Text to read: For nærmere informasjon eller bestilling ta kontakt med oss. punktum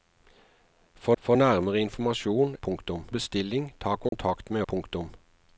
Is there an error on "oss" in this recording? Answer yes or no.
yes